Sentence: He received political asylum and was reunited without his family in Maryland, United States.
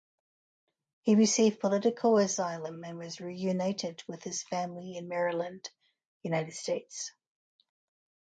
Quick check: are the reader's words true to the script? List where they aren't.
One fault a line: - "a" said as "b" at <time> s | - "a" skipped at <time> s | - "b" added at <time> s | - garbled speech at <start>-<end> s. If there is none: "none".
- "without" said as "with" at 4.1 s